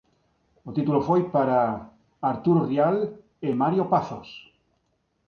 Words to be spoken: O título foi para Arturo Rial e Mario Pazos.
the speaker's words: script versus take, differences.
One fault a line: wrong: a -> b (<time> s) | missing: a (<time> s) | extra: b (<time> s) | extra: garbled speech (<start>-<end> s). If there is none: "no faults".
no faults